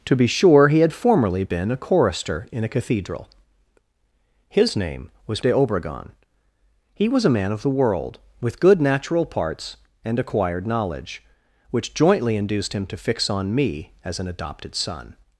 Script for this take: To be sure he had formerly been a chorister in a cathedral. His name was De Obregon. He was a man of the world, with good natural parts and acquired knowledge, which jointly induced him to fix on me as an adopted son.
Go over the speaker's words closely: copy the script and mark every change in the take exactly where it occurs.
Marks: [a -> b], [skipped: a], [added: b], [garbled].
To be sure he had formerly been a chorister in a cathedral. His name was De Obregon. He was a man of the world, with good natural parts and acquired knowledge, which jointly induced him to fix on me as an adopted son.